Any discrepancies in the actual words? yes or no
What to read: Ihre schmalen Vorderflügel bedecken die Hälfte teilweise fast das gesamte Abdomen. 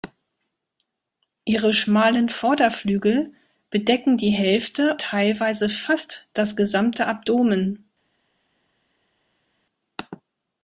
no